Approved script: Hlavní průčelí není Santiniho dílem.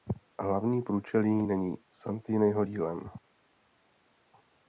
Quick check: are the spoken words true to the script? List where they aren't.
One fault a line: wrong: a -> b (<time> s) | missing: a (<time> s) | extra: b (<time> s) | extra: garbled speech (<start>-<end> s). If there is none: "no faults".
no faults